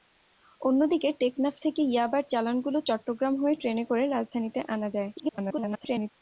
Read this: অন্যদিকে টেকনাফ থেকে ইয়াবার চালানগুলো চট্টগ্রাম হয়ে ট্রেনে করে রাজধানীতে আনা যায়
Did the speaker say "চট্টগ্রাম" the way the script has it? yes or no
yes